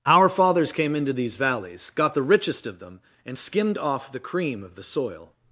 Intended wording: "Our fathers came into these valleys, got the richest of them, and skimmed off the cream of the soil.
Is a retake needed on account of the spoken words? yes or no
no